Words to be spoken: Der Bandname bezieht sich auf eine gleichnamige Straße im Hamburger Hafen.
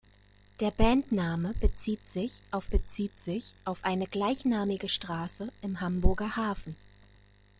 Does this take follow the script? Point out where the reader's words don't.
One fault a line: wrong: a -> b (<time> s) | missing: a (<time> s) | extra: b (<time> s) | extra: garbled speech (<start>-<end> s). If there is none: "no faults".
extra: bezieht sich auf (2.7 s)